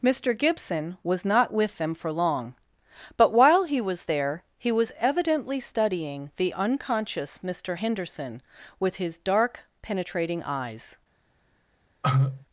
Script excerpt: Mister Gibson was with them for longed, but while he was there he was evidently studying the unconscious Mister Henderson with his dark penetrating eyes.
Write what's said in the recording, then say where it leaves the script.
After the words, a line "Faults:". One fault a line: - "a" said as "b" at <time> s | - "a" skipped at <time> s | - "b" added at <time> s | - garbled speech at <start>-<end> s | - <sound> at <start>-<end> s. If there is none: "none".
Mister Gibson was not with them for long, but while he was there he was evidently studying the unconscious Mister Henderson with his dark penetrating eyes.
Faults:
- "not" added at 1.2 s
- "longed" said as "long" at 2.1 s
- cough at 12.0-12.5 s